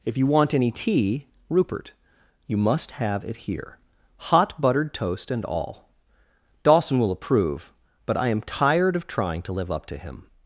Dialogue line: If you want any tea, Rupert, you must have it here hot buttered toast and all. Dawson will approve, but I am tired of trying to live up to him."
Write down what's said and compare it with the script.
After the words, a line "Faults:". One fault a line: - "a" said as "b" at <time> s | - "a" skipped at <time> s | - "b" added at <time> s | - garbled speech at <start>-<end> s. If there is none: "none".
If you want any tea, Rupert, you must have it here hot buttered toast and all. Dawson will approve, but I am tired of trying to live up to him."
Faults:
none